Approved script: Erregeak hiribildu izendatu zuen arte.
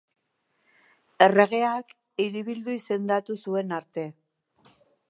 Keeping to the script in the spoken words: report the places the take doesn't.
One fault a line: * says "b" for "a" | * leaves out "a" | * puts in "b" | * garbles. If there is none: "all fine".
all fine